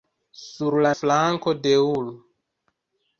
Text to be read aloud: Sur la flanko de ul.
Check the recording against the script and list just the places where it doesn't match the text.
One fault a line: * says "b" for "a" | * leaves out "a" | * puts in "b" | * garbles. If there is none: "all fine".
all fine